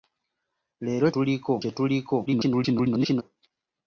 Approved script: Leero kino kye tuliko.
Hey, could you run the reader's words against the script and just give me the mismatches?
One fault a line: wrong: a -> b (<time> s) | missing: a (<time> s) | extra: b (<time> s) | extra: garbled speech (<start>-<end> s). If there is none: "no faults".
wrong: kino -> tuliko (1.1 s)
extra: garbled speech (2.3-3.2 s)